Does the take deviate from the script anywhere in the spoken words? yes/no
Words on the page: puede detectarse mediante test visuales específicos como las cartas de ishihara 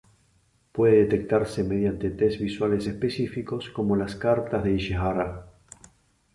no